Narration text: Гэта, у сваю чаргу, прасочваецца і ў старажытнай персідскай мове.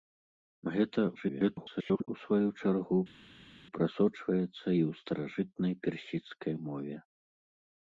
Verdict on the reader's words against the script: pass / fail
fail